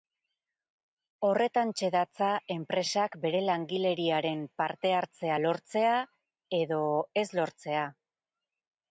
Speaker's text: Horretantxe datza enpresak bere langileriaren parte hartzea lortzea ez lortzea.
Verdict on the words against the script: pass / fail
fail